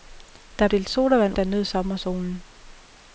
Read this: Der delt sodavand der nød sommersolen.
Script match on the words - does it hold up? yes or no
yes